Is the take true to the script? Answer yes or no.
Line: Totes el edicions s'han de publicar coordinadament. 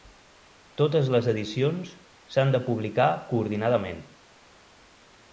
no